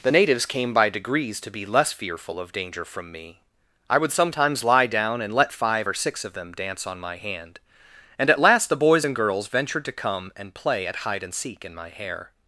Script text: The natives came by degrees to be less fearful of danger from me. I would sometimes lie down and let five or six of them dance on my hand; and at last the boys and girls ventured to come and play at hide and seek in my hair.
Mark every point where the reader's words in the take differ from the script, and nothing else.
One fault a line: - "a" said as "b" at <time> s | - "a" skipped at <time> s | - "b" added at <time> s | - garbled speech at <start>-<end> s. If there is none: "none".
none